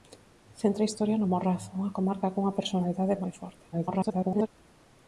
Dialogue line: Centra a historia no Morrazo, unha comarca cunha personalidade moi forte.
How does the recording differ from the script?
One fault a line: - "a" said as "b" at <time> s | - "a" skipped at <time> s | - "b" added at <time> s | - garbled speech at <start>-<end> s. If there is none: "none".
- garbled speech at 3.7-4.5 s